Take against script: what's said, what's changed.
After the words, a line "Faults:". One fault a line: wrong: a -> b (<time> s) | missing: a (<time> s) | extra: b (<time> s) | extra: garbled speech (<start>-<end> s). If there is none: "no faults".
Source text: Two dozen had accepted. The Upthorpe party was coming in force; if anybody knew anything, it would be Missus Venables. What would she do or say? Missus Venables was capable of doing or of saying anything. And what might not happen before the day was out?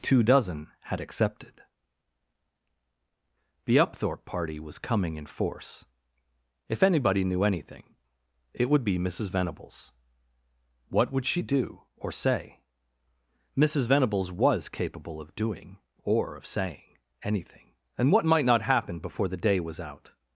Two dozen had accepted. The Upthorpe party was coming in force; if anybody knew anything, it would be Missus Venables. What would she do or say? Missus Venables was capable of doing or of saying anything. And what might not happen before the day was out?
Faults:
no faults